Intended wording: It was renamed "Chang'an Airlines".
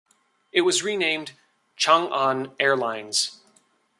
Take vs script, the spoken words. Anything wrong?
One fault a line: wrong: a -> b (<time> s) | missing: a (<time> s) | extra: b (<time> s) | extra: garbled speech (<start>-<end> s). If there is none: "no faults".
no faults